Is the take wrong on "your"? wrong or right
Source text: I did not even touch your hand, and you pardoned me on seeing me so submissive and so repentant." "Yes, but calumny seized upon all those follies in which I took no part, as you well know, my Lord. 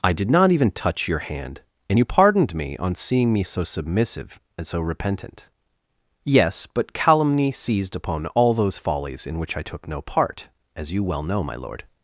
right